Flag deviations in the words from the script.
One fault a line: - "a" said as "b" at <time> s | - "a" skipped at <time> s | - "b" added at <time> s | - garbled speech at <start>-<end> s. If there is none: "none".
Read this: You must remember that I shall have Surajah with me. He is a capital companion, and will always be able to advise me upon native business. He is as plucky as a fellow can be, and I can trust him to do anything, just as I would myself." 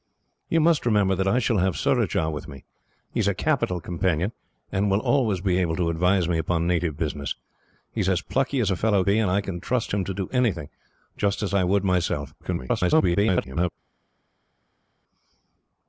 - "can" skipped at 9.0 s
- garbled speech at 12.4-13.7 s